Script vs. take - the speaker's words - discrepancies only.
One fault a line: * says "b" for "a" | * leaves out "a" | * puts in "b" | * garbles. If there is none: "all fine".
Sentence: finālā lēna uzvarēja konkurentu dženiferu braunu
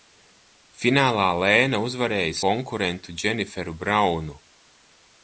all fine